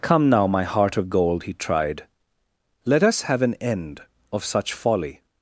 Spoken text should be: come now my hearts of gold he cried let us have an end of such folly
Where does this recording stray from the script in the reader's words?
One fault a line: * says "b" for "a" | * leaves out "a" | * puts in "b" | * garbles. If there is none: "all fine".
* says "heart" for "hearts"
* says "tried" for "cried"